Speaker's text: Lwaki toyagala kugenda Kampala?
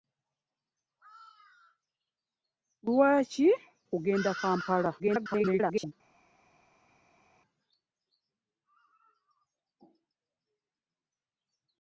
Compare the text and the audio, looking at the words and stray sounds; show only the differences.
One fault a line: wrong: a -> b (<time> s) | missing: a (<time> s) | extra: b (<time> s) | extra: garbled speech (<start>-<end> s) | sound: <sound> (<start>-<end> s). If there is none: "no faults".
missing: toyagala (3.5 s)
extra: garbled speech (5.0-5.9 s)